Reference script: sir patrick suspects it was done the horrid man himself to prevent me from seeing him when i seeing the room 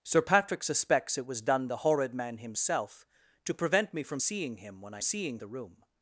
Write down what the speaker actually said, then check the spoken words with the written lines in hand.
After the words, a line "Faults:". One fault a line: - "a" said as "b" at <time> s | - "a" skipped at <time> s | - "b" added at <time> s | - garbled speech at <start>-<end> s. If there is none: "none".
sir patrick suspects it was done the horrid man himself to prevent me from seeing him when i seeing the room
Faults:
none